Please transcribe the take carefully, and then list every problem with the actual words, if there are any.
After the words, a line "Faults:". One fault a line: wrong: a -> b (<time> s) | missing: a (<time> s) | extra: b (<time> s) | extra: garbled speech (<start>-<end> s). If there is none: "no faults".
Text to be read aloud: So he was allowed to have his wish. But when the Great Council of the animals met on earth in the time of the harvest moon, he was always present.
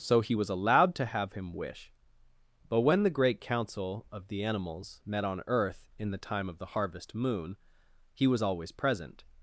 So he was allowed to have him wish. But when the Great Council of the animals met on earth in the time of the harvest moon, he was always present.
Faults:
wrong: his -> him (1.3 s)